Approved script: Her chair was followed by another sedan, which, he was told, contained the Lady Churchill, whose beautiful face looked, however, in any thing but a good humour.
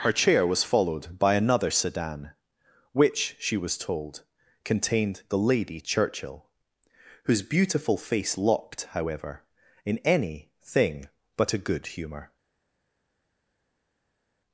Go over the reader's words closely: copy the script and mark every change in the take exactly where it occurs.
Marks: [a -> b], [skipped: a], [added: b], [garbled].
Her chair was followed by another sedan, which, [he -> she] was told, contained the Lady Churchill, whose beautiful face [looked, -> locked] however, in any thing but a good humour.